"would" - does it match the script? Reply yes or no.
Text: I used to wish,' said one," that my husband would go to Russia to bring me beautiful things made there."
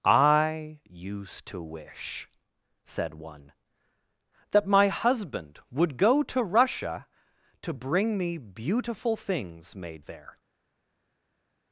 yes